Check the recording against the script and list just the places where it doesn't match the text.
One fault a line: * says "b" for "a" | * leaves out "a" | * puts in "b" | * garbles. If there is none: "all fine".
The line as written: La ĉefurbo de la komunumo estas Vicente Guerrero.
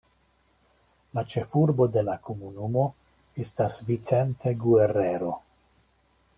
all fine